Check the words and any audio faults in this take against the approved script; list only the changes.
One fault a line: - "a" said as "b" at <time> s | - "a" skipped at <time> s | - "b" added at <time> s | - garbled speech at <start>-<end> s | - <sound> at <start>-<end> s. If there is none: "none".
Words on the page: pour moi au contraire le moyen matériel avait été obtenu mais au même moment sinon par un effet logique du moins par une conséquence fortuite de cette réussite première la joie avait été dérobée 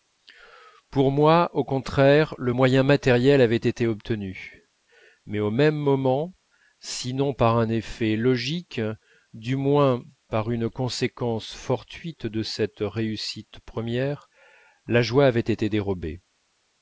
none